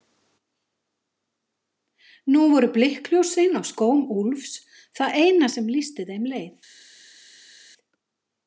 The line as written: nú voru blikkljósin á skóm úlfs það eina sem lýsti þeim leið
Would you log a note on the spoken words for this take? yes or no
no